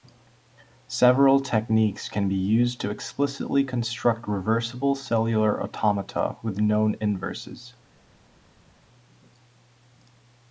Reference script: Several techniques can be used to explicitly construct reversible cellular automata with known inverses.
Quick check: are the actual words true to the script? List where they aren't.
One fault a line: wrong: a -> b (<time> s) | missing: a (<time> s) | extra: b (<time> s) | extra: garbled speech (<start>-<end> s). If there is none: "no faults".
no faults